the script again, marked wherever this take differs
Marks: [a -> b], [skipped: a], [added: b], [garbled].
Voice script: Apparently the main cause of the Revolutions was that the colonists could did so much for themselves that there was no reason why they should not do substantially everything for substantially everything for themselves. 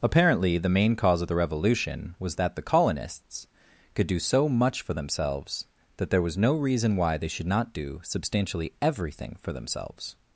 Apparently the main cause of the [Revolutions -> Revolution] was that the colonists could [did -> do] so much for themselves that there was no reason why they should not do substantially everything for [skipped: substantially everything for] themselves.